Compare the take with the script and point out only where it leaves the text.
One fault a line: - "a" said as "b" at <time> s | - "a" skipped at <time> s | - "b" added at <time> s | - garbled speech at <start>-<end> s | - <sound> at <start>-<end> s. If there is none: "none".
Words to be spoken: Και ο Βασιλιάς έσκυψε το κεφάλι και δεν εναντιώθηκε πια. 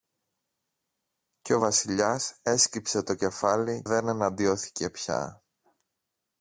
- "και" skipped at 3.8 s